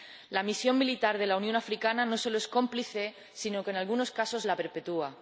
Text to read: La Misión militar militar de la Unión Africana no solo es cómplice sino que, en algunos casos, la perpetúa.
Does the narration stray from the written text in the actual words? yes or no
yes